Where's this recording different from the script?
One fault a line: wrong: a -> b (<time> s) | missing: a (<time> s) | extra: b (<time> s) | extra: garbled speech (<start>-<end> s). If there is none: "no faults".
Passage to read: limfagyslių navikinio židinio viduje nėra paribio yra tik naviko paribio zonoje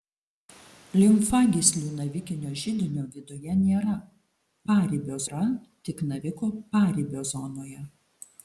no faults